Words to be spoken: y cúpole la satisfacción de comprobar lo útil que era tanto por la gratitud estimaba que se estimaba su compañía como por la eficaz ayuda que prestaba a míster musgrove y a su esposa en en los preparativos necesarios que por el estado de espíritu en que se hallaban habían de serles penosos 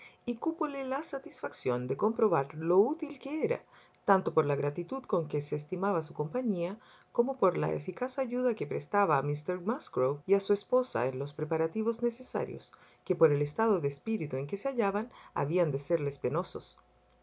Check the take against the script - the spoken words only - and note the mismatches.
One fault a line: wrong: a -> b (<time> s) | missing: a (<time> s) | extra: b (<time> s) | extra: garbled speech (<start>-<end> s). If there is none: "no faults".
wrong: estimaba -> con (5.0 s)
missing: en (11.2 s)